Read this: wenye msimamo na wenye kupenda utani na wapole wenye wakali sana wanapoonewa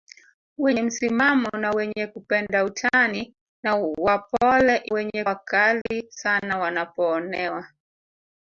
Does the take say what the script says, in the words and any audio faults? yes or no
no